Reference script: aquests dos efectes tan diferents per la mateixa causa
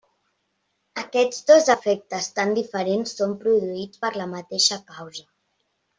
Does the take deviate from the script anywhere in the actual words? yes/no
yes